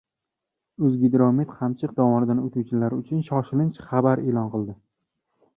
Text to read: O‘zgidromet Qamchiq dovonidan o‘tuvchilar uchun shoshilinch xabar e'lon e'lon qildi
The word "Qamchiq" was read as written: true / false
true